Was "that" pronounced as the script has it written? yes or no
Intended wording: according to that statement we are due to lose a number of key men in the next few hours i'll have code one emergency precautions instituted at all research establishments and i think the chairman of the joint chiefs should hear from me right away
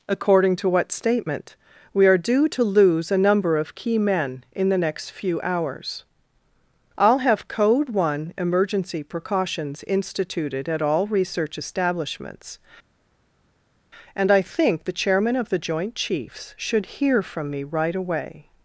no